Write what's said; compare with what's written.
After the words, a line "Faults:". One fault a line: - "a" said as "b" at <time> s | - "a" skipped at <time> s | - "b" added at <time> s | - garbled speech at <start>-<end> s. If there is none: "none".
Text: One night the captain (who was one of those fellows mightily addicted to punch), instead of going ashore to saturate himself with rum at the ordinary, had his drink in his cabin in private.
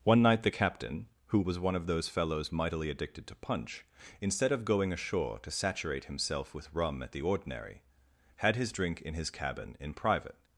One night the captain (who was one of those fellows mightily addicted to punch), instead of going ashore to saturate himself with rum at the ordinary, had his drink in his cabin in private.
Faults:
none